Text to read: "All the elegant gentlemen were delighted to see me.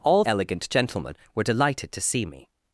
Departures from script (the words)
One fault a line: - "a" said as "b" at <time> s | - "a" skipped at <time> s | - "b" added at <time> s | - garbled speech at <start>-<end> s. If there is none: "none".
- "the" skipped at 0.2 s